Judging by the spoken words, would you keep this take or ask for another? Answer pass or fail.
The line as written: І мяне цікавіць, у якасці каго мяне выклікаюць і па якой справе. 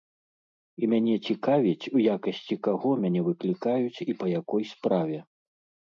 pass